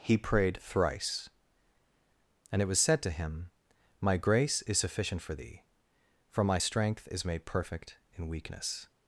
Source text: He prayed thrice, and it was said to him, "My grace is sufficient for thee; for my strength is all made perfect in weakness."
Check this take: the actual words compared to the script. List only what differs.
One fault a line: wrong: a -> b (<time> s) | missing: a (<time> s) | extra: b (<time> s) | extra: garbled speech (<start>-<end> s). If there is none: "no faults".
missing: all (7.2 s)